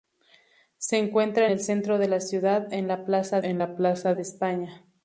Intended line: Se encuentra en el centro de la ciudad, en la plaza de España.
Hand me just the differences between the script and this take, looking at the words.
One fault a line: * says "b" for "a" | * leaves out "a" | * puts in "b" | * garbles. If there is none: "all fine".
* leaves out "en"
* puts in "en la plaza"